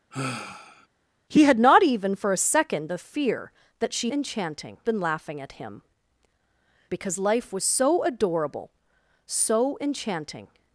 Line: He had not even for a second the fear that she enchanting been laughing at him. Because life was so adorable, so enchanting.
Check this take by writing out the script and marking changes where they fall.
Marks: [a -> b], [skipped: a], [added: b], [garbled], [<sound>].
[sigh] He had not even for a second the fear that she enchanting been laughing at him. Because life was so adorable, so enchanting.